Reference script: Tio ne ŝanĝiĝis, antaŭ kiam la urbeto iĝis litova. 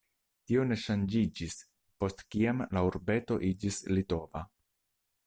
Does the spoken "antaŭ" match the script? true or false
false